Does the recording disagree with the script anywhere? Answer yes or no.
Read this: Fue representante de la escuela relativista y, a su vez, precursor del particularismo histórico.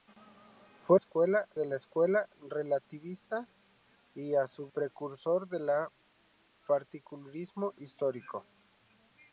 yes